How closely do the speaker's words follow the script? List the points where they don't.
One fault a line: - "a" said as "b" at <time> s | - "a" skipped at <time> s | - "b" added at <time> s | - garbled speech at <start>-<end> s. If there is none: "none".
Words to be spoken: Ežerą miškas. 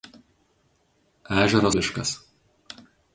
none